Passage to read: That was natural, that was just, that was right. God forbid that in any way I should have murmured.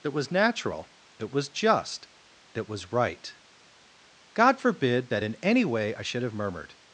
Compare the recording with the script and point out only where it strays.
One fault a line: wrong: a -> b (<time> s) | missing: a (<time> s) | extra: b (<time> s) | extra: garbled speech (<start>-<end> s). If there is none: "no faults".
no faults